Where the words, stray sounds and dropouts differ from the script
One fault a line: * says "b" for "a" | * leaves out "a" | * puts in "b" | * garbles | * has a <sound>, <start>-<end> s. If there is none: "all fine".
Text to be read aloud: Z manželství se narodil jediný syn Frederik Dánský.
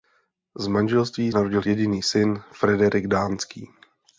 * leaves out "se"